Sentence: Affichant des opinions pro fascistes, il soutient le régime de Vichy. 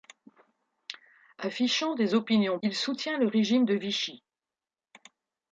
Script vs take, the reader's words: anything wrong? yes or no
yes